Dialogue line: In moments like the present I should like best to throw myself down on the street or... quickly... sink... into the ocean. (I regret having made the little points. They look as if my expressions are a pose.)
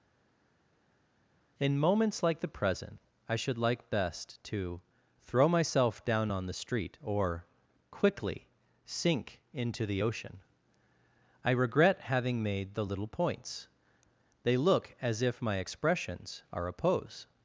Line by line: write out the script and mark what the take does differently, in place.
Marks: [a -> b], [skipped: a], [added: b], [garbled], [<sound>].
In moments like the present I should like best to throw myself down on the street or... quickly... sink... into the ocean. (I regret having made the little points. They look as if my expressions are a pose.)